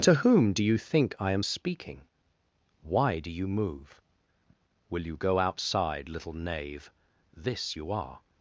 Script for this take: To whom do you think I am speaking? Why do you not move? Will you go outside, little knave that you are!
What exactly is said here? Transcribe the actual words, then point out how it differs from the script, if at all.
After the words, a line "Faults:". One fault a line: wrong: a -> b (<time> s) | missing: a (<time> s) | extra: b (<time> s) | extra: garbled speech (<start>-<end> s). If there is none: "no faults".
To whom do you think I am speaking? Why do you move? Will you go outside, little knave this you are!
Faults:
missing: not (3.5 s)
wrong: that -> this (7.4 s)